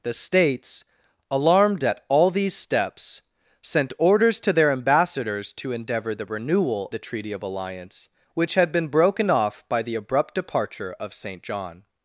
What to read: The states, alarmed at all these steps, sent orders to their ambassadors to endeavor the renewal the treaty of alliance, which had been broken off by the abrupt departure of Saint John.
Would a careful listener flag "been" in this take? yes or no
no